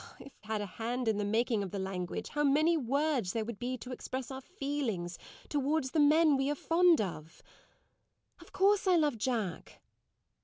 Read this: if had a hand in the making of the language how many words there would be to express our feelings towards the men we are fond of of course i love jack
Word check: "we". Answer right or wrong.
right